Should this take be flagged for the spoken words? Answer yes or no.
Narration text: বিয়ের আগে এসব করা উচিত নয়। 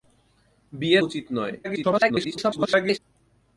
yes